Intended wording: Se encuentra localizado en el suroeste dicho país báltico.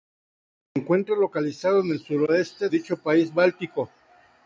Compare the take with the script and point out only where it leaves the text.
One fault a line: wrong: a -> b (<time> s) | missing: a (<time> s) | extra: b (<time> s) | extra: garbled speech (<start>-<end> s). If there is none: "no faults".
no faults